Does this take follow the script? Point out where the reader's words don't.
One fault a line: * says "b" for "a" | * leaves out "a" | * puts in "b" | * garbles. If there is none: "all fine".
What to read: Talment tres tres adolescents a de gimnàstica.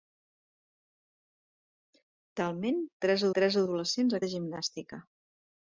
all fine